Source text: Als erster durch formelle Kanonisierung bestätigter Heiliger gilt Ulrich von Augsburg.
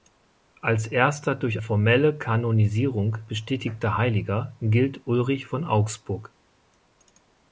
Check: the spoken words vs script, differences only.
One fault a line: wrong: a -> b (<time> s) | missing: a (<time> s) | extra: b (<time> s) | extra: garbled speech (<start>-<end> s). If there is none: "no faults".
no faults